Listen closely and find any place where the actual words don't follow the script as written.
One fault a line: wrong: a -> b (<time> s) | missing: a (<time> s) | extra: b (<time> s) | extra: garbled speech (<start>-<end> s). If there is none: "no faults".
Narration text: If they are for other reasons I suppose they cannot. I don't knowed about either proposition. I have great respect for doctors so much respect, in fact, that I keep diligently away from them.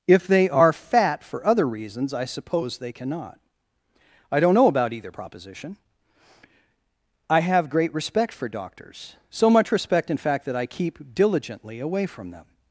extra: fat (0.7 s)
wrong: knowed -> know (4.5 s)